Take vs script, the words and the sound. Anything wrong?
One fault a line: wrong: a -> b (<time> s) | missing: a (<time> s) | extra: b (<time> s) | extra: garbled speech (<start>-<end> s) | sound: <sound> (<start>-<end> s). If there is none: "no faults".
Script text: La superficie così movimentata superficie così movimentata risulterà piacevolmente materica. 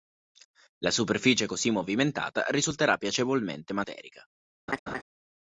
missing: superficie così movimentata (2.5 s)
sound: laugh (4.7-5.0 s)